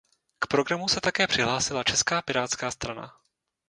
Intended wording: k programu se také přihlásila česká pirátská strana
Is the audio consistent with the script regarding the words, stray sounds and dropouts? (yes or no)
yes